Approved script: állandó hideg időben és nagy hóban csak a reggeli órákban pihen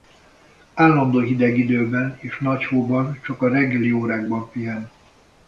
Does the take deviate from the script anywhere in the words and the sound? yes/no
no